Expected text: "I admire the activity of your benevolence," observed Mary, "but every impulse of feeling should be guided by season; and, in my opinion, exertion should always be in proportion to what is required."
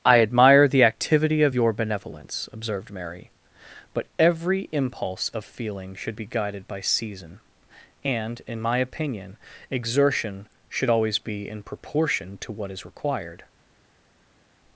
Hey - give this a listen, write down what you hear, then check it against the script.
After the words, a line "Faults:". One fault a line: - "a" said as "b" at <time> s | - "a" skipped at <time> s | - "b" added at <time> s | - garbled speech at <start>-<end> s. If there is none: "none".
"I admire the activity of your benevolence," observed Mary, "but every impulse of feeling should be guided by season; and, in my opinion, exertion should always be in proportion to what is required."
Faults:
none